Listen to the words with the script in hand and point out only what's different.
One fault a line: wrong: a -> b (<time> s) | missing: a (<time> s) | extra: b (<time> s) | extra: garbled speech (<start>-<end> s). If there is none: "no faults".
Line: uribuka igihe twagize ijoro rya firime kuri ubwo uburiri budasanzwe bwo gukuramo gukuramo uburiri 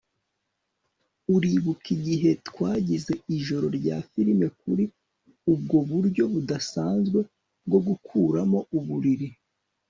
wrong: uburiri -> buryo (5.9 s)
missing: gukuramo (8.6 s)